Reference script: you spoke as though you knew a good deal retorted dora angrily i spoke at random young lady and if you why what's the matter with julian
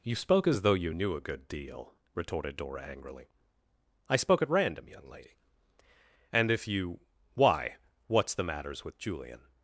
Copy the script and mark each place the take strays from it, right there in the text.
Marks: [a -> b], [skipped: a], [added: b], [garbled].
you spoke as though you knew a good deal retorted dora angrily i spoke at random young lady and if you why what's the [matter -> matters] with julian